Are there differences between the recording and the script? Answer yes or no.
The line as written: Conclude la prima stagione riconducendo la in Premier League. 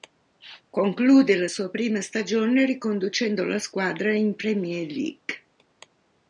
yes